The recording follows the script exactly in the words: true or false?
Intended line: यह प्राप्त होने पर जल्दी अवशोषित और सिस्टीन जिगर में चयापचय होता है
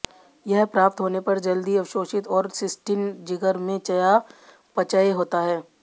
true